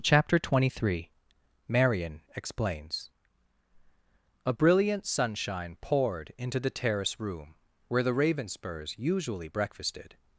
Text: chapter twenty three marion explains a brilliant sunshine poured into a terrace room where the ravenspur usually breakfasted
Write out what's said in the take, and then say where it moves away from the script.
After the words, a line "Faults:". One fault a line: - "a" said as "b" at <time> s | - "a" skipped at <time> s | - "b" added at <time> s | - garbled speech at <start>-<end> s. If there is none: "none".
chapter twenty three marion explains a brilliant sunshine poured into the terrace room where the ravenspurs usually breakfasted
Faults:
- "a" said as "the" at 6.6 s
- "ravenspur" said as "ravenspurs" at 8.1 s